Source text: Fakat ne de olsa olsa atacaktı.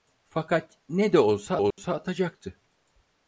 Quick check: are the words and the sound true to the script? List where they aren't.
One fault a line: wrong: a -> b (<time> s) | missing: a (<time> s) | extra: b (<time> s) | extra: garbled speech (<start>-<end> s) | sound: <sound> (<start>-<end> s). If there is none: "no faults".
sound: dropout (1.7-1.8 s)